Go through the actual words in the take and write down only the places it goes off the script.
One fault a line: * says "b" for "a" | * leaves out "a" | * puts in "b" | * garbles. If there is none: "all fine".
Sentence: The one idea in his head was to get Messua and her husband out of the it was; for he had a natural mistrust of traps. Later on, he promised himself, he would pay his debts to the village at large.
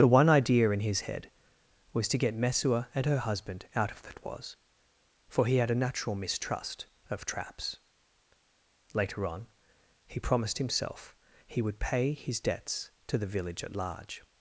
all fine